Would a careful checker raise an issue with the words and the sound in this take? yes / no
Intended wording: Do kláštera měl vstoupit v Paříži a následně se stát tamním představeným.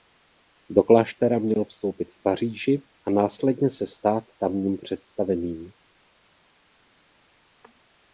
no